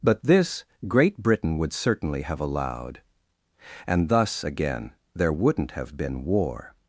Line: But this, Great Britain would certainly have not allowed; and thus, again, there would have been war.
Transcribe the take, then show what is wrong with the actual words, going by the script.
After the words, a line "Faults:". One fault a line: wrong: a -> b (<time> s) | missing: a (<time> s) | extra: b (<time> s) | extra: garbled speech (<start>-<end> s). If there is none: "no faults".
But this, Great Britain would certainly have allowed; and thus, again, there wouldn't have been war.
Faults:
missing: not (2.4 s)
wrong: would -> wouldn't (5.3 s)